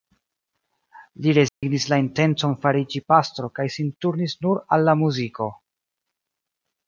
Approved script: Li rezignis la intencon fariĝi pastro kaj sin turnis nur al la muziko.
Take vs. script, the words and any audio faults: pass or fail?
fail